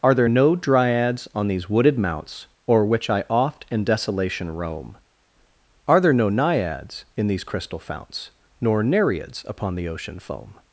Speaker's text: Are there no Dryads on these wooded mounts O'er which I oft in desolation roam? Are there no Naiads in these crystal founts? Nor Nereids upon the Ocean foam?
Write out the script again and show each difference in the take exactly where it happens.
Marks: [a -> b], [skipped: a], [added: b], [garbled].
Are there no Dryads on these wooded mounts O'er which I oft in desolation roam? Are there no Naiads in these crystal founts? Nor Nereids upon the Ocean foam?